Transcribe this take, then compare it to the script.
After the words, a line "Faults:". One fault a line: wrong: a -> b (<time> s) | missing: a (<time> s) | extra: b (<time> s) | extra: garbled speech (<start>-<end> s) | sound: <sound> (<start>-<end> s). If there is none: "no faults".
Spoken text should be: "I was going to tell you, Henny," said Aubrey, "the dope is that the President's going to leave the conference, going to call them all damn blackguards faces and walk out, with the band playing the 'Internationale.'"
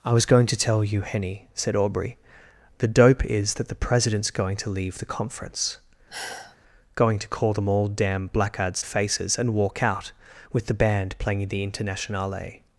"I was going to tell you, Henny," said Aubrey, "the dope is that the President's going to leave the conference, going to call them all damn blackguards faces and walk out, with the band playing the 'Internationale.'"
Faults:
sound: sigh (6.1-6.6 s)